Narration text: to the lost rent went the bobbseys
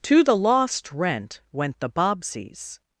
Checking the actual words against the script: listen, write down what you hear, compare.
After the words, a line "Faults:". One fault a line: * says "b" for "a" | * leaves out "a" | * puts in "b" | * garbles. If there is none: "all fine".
to the lost rent went the bobbseys
Faults:
all fine